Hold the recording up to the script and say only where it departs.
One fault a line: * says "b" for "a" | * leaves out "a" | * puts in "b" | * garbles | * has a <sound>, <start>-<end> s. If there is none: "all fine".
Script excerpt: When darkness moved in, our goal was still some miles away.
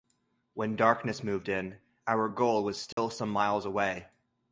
* has a dropout, 2.9-3.0 s